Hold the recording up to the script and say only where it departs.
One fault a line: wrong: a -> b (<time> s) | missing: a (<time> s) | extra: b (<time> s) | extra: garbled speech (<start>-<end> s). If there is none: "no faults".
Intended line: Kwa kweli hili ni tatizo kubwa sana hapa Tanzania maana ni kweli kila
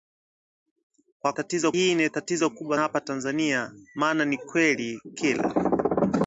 wrong: kweli -> tatizo (1.3 s)
missing: sana (2.8 s)